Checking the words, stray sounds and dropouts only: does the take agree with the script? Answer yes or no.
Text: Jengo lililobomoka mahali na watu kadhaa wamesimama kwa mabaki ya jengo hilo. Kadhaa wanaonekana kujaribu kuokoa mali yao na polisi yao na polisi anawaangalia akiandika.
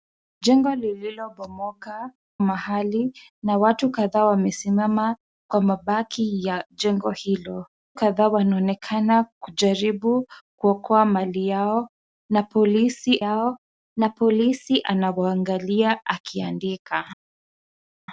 yes